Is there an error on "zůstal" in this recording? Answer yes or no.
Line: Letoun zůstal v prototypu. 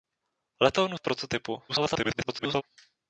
yes